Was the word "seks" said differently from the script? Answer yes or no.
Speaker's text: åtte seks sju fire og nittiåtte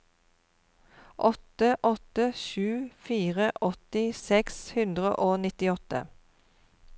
yes